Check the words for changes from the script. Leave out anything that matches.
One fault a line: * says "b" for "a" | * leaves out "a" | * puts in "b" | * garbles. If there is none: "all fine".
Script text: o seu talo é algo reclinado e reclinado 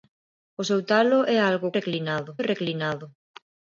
all fine